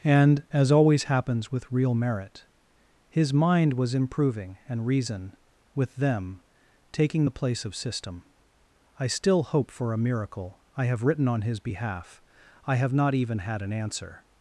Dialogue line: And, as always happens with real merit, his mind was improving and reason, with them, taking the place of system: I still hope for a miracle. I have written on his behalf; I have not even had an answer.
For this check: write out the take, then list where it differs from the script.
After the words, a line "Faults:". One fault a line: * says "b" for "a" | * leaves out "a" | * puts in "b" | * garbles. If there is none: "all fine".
And, as always happens with real merit, his mind was improving and reason, with them, taking the place of system: I still hope for a miracle. I have written on his behalf; I have not even had an answer.
Faults:
all fine